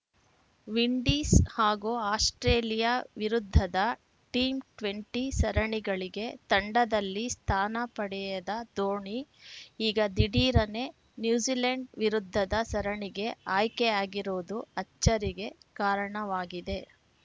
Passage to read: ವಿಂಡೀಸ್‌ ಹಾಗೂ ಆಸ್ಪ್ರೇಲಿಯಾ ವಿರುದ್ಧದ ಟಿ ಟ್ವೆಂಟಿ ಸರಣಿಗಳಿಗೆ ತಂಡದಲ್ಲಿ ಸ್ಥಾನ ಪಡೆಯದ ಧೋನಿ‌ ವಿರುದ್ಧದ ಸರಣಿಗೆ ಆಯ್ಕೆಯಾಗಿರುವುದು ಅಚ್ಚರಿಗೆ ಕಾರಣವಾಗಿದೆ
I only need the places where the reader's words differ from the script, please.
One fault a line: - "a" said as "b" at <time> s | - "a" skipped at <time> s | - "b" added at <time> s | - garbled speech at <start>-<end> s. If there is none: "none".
- "ಈಗ ದಿಢೀರನೆ ನ್ಯೂಜಿಲೆಂಡ್" added at 9.8 s